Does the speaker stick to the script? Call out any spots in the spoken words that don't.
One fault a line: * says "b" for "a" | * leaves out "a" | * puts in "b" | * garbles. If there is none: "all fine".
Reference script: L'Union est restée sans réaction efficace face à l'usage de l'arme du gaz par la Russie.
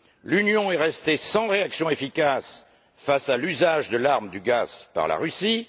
all fine